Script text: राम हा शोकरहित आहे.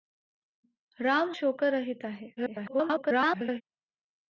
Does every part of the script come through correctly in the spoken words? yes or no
no